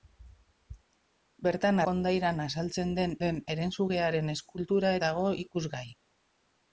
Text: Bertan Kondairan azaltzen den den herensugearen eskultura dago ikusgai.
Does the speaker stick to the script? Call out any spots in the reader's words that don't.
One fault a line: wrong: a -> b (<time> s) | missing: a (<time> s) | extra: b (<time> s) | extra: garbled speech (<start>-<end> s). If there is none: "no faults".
no faults